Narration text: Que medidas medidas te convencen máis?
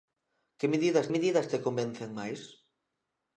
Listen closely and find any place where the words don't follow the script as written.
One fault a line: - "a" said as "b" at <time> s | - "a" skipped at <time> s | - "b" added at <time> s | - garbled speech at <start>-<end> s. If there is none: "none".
none